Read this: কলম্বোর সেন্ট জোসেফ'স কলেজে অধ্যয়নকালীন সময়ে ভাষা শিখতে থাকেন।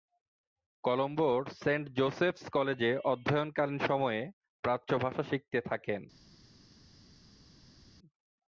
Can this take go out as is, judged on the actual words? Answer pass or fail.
fail